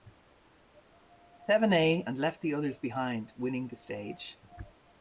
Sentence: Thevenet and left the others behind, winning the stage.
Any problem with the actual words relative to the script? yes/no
no